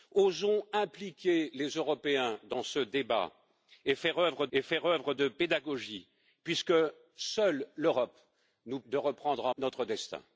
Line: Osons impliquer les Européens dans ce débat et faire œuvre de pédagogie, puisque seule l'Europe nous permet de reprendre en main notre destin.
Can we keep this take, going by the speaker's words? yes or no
no